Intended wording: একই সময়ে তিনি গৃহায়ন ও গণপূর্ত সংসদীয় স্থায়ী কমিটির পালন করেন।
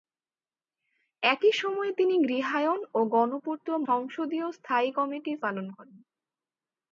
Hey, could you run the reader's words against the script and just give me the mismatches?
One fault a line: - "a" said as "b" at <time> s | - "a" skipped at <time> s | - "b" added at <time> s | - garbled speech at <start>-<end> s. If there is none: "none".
none